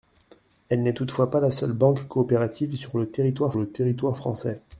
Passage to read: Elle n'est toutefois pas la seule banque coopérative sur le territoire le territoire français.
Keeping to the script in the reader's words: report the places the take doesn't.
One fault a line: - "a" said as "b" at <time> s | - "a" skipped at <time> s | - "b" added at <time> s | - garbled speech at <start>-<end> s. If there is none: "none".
none